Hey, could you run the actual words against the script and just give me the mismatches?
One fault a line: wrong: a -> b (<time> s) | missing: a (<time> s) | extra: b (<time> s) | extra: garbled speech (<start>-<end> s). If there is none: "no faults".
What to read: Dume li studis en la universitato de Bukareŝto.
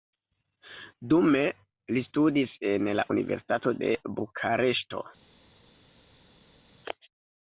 no faults